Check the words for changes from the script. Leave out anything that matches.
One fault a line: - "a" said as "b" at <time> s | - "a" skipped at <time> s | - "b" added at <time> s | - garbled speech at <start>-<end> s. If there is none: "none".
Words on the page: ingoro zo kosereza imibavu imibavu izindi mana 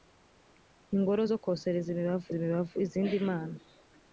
none